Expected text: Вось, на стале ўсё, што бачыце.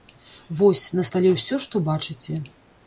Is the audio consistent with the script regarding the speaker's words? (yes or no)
yes